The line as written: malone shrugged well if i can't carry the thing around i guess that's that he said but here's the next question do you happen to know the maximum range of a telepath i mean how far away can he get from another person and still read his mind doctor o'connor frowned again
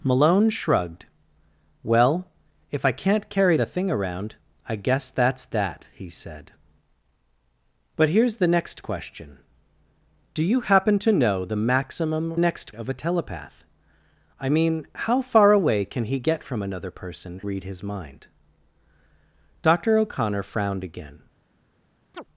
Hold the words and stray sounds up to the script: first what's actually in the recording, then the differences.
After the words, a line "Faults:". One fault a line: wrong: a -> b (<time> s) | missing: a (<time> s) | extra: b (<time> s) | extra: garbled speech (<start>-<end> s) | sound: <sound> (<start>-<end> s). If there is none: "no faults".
malone shrugged well if i can't carry the thing around i guess that's that he said but here's the next question do you happen to know the maximum next of a telepath i mean how far away can he get from another person read his mind doctor o'connor frowned again
Faults:
wrong: range -> next (12.4 s)
missing: and still (17.4 s)
sound: chirp (22.1-22.2 s)